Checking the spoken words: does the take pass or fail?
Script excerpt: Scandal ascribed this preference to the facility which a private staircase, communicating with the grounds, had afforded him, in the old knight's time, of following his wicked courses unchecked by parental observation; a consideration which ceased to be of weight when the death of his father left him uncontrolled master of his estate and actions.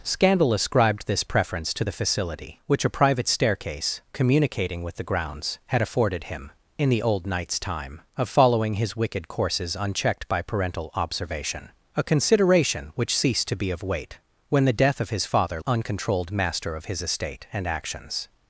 fail